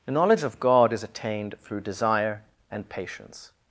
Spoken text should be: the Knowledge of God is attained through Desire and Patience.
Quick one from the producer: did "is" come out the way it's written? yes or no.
yes